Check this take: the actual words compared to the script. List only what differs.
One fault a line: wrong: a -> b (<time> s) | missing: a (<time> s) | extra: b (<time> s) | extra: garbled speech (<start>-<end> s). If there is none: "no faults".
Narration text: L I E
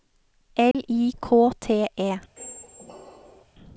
extra: K T (1.2 s)